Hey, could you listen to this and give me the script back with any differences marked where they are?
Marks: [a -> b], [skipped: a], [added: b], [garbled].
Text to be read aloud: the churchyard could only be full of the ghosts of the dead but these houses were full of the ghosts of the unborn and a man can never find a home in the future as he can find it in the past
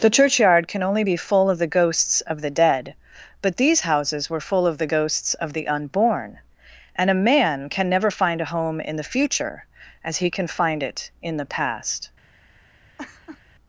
the churchyard [could -> can] only be full of the ghosts of the dead but these houses were full of the ghosts of the unborn and a man can never find a home in the future as he can find it in the past